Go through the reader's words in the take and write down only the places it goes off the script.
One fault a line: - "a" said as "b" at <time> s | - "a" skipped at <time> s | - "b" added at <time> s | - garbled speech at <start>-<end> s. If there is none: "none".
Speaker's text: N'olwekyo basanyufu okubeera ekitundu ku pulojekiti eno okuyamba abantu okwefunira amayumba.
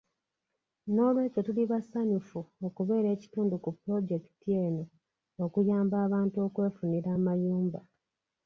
- "tuli" added at 1.5 s